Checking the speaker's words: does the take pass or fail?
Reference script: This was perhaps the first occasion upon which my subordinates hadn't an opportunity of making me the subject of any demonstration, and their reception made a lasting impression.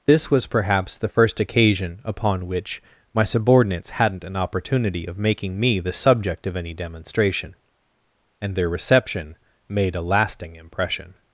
pass